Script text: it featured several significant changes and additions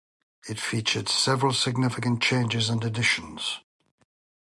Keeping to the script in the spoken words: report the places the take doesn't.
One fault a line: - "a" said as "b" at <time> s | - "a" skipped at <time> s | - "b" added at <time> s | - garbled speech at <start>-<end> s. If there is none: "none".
none